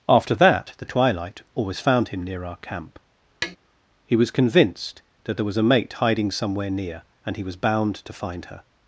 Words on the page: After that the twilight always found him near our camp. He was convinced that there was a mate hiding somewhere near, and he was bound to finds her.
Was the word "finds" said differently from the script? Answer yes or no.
yes